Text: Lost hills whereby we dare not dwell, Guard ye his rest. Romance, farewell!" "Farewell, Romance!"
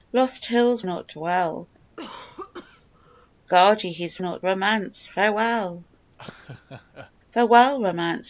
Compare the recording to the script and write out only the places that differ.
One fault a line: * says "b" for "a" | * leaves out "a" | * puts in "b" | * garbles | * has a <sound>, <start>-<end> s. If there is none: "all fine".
* leaves out "whereby we dare"
* has a cough, 1.8-3.4 s
* says "not" for "rest"
* has a laugh, 6.1-7.1 s